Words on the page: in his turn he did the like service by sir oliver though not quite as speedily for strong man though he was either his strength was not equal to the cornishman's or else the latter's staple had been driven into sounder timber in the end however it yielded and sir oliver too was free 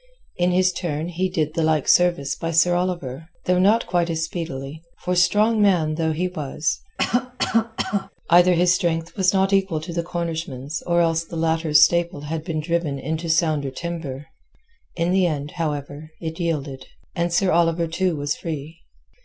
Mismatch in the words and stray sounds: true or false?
true